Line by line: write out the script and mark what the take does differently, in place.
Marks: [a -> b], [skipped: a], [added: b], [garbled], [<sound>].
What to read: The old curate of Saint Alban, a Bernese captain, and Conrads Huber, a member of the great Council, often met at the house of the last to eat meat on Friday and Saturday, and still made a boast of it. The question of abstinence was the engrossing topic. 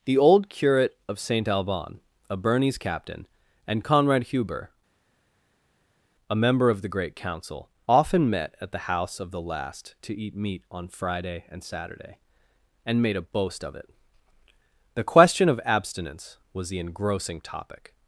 The old curate of Saint Alban, a Bernese captain, and [Conrads -> Conrad] Huber, a member of the great Council, often met at the house of the last to eat meat on Friday and Saturday, and [skipped: still] made a boast of it. The question of abstinence was the engrossing topic.